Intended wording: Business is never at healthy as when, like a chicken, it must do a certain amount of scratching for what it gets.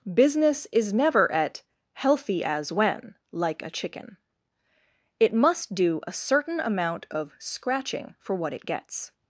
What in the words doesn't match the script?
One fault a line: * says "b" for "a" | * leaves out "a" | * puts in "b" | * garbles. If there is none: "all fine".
all fine